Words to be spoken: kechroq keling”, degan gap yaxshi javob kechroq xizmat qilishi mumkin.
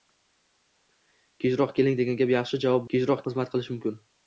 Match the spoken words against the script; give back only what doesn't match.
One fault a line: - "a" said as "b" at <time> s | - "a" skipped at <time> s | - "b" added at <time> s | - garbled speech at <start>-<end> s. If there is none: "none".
none